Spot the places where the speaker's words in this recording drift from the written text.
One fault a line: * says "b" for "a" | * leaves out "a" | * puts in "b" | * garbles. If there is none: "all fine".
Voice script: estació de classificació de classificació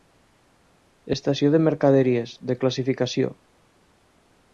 * says "mercaderies" for "classificació"